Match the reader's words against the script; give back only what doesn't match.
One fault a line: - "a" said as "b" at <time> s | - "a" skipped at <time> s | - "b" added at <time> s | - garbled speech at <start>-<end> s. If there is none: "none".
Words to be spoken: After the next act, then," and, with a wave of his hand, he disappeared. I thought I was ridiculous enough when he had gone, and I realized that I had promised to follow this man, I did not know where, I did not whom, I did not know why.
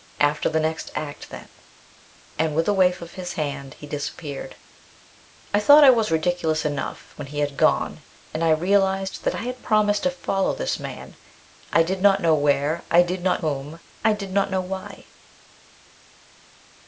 none